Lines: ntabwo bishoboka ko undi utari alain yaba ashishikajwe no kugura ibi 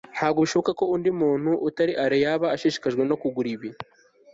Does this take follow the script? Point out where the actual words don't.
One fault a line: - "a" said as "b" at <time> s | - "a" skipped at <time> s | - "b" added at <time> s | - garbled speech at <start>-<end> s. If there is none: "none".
- "muntu" added at 1.2 s